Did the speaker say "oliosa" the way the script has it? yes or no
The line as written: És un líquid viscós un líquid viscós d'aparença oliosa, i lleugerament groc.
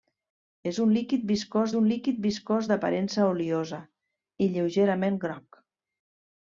yes